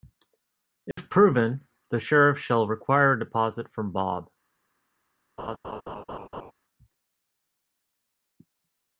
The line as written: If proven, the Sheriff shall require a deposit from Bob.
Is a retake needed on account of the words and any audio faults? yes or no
yes